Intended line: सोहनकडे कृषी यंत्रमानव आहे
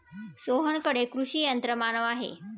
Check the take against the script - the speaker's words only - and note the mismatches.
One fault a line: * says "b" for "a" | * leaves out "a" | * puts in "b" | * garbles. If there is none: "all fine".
all fine